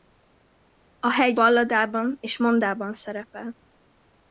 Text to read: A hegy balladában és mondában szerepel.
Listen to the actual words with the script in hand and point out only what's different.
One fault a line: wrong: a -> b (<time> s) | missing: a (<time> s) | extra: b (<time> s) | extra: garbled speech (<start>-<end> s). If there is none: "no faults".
no faults